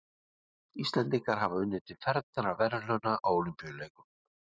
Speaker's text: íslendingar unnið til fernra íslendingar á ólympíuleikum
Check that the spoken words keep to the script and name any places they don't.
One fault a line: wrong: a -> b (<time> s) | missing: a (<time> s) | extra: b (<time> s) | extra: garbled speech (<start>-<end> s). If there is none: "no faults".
extra: hafa (1.4 s)
wrong: íslendingar -> verðlauna (2.6 s)